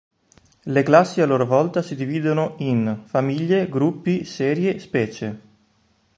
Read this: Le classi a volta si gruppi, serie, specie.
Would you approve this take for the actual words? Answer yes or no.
no